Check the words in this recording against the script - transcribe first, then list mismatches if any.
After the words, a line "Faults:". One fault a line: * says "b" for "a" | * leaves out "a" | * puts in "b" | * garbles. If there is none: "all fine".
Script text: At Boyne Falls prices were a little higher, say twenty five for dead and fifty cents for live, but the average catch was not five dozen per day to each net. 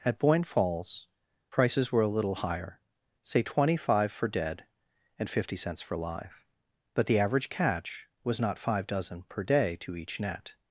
At Boyne Falls prices were a little higher, say twenty five for dead and fifty cents for live, but the average catch was not five dozen per day to each net.
Faults:
all fine